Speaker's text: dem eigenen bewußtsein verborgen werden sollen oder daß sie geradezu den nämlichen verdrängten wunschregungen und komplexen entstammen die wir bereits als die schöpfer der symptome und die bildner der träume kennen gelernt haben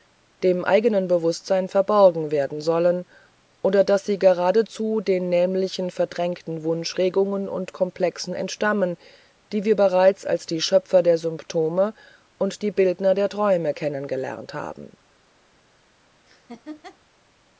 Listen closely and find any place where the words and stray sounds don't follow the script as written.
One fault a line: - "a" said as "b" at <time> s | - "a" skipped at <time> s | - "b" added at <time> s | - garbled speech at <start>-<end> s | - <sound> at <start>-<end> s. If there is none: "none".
- laugh at 16.3-17.0 s